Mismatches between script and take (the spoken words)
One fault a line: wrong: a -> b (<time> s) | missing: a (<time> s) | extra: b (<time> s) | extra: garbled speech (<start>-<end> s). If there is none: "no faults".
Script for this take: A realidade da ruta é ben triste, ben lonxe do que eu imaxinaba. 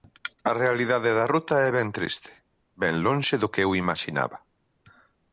no faults